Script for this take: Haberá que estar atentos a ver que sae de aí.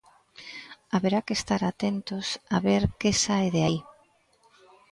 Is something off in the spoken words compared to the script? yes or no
no